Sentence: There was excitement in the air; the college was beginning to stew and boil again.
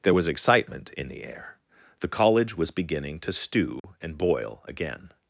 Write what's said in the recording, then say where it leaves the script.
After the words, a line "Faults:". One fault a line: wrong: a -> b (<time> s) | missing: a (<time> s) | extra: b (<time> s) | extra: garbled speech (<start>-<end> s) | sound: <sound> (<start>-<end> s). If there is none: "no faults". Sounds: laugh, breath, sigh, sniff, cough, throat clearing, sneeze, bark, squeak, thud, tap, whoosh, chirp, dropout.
There was excitement in the air; the college was beginning to stew and boil again.
Faults:
sound: dropout (3.8-3.8 s)